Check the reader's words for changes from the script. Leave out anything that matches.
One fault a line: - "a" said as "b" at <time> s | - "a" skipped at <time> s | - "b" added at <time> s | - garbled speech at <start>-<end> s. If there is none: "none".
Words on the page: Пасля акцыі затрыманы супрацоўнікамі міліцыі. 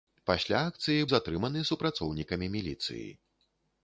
none